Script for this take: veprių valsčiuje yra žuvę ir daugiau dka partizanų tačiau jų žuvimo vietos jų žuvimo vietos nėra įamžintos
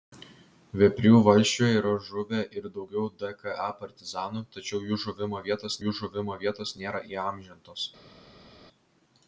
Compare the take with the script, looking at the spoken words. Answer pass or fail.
pass